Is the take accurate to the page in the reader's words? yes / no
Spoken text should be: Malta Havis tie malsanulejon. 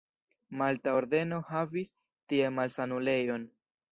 no